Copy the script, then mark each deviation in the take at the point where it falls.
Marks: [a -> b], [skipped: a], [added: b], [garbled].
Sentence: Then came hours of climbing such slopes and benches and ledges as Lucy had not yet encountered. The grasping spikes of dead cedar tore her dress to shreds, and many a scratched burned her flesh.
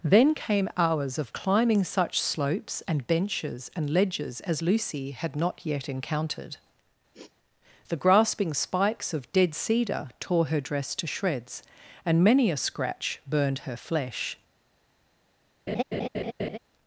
Then came hours of climbing such slopes and benches and ledges as Lucy had not yet encountered. The grasping spikes of dead cedar tore her dress to shreds, and many a [scratched -> scratch] burned her flesh.